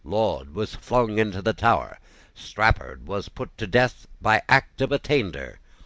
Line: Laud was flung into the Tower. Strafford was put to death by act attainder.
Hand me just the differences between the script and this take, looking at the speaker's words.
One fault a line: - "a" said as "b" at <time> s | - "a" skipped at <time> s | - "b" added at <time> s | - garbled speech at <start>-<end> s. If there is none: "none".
- "of" added at 4.8 s